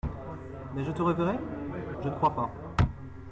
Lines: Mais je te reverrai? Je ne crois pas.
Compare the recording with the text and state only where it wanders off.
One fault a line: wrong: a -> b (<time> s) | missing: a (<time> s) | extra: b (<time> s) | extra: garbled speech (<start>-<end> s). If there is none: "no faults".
no faults